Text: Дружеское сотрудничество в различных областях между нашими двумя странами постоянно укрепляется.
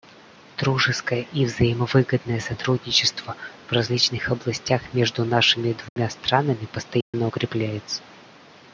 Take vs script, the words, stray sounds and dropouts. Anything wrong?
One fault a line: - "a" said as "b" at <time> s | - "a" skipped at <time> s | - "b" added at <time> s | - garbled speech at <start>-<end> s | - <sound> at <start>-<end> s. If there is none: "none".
- "и взаимовыгодное" added at 1.3 s
- dropout at 5.9-6.0 s
- dropout at 7.0-7.1 s